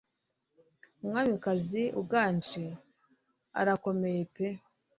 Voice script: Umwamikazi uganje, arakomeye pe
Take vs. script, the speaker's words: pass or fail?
pass